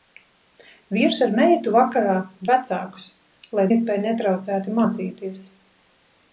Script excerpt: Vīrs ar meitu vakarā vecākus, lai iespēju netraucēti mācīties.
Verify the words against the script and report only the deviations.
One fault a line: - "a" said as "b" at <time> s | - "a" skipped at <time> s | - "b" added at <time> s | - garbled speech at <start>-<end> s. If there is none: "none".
none